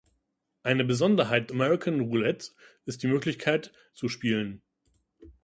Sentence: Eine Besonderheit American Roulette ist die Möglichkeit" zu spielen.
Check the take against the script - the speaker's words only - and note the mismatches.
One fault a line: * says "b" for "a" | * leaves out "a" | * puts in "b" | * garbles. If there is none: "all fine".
all fine